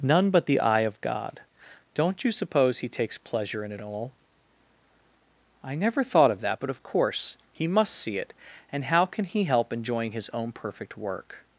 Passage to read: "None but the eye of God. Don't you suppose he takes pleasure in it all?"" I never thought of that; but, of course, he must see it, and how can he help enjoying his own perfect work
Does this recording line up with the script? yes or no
yes